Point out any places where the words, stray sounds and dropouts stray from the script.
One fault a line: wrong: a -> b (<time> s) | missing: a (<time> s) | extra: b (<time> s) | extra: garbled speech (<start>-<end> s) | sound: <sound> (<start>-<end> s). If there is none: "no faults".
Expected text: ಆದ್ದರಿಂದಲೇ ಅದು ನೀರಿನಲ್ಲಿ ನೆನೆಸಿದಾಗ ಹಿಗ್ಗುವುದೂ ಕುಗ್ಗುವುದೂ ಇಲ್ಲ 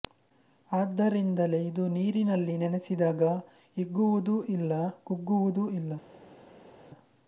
wrong: ಅದು -> ಇದು (1.6 s)
extra: ಇಲ್ಲ (4.5 s)